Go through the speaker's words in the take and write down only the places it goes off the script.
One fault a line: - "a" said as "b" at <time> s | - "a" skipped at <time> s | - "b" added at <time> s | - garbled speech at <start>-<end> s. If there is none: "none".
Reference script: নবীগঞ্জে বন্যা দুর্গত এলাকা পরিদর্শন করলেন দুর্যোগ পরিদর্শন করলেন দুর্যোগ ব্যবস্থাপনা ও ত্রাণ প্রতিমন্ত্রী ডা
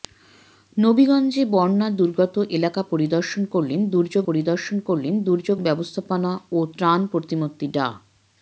none